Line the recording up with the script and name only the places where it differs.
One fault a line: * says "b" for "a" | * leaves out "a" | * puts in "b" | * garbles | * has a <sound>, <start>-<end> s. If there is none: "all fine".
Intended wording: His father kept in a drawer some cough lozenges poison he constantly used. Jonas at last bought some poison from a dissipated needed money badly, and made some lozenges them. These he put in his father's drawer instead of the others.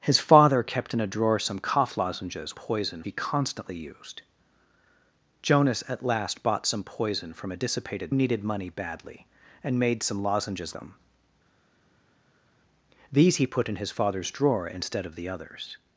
all fine